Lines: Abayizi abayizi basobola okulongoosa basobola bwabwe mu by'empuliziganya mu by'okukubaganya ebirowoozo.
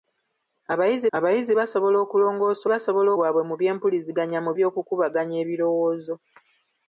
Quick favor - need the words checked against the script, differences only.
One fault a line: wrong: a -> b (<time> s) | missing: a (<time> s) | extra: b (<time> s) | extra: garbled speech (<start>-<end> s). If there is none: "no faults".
no faults